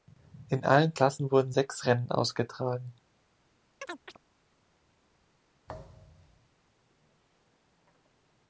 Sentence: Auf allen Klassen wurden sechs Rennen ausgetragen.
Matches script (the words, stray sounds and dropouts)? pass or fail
fail